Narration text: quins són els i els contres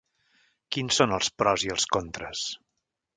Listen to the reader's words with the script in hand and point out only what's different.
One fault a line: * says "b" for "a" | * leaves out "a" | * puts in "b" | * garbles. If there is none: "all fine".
* puts in "pros"